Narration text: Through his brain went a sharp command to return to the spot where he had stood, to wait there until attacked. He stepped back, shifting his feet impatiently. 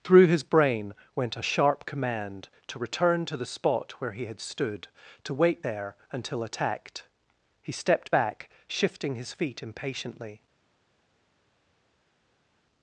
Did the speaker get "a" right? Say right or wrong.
right